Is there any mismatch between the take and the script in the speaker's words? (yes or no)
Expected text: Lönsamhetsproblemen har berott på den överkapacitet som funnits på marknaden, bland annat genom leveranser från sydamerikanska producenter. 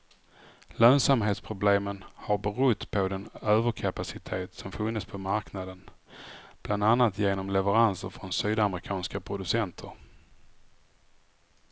no